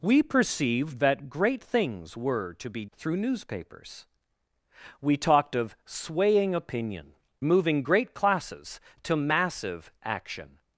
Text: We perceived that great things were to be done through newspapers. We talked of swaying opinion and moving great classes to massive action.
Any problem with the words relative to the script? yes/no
yes